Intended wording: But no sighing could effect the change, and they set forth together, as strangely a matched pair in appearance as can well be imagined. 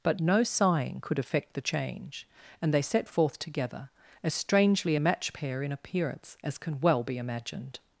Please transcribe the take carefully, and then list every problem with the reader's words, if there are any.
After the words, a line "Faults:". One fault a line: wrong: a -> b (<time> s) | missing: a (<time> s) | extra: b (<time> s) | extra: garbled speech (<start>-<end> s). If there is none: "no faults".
But no sighing could effect the change, and they set forth together, as strangely a match pair in appearance as can well be imagined.
Faults:
wrong: matched -> match (5.0 s)